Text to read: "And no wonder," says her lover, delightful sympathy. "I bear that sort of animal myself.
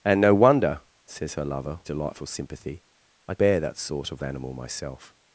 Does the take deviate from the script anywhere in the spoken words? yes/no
no